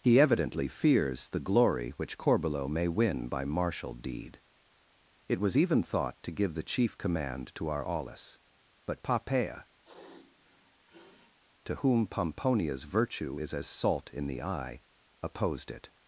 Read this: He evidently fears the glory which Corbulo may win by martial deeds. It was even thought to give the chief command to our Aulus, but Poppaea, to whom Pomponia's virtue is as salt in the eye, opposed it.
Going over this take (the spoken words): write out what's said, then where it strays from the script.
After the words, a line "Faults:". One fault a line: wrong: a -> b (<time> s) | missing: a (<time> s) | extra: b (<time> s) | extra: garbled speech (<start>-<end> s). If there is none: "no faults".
He evidently fears the glory which Corbulo may win by martial deed. It was even thought to give the chief command to our Aulus, but Poppaea, to whom Pomponia's virtue is as salt in the eye, opposed it.
Faults:
wrong: deeds -> deed (3.9 s)